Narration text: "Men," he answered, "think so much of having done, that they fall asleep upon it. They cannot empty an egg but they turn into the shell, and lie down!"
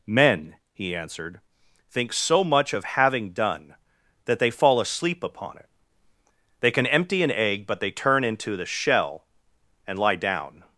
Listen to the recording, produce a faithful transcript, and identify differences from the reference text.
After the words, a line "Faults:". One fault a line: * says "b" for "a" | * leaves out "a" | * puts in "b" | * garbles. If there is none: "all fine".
"Men," he answered, "think so much of having done, that they fall asleep upon it. They can empty an egg but they turn into the shell, and lie down!"
Faults:
* says "can" for "cannot"